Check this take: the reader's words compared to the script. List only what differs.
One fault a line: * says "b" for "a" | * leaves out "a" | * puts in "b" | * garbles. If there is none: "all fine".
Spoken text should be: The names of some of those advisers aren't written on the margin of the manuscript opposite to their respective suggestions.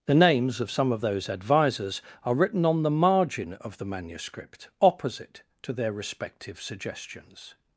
* says "are" for "aren't"